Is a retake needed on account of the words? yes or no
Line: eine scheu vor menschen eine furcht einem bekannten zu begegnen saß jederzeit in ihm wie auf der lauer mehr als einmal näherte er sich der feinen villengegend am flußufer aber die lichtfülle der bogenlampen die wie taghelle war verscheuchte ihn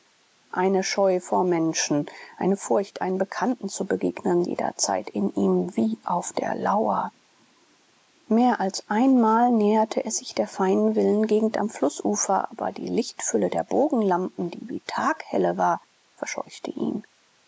yes